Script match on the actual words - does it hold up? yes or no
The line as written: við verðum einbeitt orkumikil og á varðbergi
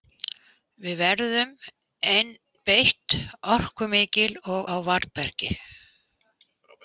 yes